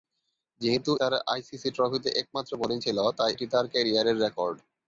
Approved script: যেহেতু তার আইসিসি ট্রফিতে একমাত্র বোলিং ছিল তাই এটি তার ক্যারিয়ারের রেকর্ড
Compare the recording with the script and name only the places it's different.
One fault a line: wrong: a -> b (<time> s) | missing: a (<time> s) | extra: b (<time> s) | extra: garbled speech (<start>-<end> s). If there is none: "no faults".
no faults